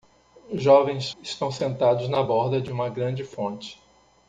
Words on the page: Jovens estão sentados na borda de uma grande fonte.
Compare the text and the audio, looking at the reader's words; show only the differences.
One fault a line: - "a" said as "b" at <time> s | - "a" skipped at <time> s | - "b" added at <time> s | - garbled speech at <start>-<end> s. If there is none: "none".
none